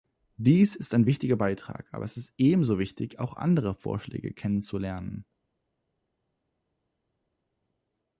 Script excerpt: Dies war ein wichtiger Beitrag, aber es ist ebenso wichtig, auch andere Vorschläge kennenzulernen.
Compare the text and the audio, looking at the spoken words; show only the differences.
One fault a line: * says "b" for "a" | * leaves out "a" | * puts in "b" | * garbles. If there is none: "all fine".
* says "ist" for "war"